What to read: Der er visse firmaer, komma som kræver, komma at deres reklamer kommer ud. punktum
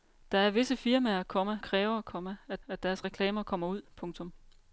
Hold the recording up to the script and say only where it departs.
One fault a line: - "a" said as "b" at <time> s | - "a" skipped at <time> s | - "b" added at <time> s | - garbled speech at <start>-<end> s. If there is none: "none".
- "som" skipped at 1.6 s
- "at" added at 2.7 s